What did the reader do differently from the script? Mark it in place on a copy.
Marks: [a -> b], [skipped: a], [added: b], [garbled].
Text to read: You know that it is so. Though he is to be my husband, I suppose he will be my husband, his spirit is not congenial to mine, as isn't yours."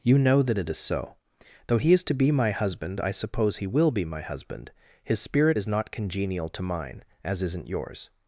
You know that it is so. Though he is to be my husband, I suppose he will be my husband, his spirit is not congenial to mine, as isn't yours."